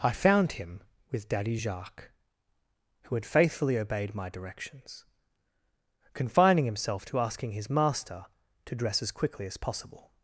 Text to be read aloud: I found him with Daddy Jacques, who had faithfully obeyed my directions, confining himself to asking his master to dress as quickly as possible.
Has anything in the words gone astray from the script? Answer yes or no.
no